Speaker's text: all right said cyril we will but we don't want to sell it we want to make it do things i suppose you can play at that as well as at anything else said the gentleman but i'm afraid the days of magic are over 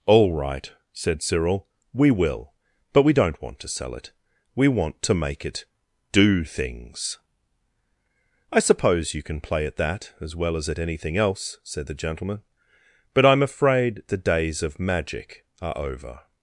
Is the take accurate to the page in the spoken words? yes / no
yes